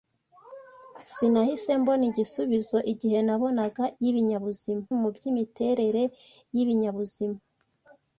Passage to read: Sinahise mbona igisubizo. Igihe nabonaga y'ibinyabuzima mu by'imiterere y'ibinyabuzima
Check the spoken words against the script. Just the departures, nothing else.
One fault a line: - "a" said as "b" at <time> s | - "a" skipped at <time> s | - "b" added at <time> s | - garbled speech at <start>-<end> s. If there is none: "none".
none